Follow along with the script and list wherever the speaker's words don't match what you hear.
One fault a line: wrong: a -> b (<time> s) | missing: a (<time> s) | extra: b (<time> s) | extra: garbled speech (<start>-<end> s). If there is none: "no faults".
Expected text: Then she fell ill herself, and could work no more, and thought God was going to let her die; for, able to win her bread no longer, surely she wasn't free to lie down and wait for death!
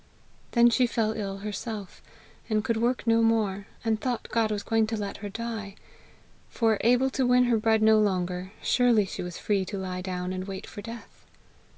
wrong: wasn't -> was (9.2 s)